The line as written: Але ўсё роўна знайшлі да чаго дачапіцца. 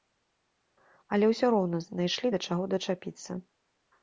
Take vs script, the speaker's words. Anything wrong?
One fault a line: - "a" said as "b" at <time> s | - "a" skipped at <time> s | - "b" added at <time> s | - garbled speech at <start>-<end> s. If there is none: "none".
none